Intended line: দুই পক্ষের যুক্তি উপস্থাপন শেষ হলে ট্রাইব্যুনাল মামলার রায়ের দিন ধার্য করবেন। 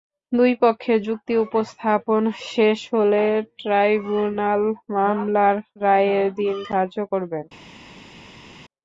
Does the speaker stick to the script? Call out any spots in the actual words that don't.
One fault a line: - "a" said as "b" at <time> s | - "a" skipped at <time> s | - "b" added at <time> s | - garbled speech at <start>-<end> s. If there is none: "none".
none